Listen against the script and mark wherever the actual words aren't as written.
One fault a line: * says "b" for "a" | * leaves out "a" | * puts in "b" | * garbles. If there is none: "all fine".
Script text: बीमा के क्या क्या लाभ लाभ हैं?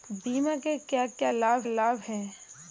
all fine